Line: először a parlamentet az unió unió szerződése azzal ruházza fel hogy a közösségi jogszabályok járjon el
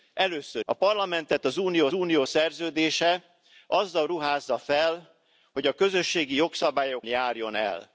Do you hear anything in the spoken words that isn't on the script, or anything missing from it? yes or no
no